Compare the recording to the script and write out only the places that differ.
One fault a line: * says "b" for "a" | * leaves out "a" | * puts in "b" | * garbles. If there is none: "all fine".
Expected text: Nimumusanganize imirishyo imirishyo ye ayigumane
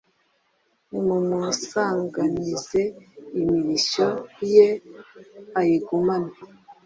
* leaves out "imirishyo"